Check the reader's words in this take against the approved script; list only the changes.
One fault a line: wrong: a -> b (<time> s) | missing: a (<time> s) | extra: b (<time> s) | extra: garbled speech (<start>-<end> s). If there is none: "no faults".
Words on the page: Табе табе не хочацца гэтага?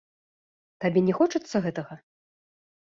missing: табе (1.0 s)